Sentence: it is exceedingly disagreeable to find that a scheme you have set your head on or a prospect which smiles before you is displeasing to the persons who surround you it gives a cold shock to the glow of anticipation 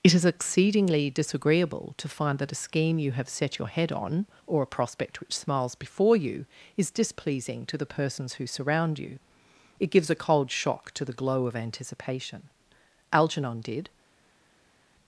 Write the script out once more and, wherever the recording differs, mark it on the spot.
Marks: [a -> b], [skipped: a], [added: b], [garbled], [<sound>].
it is exceedingly disagreeable to find that a scheme you have set your head on or a prospect which smiles before you is displeasing to the persons who surround you it gives a cold shock to the glow of anticipation [added: algernon did]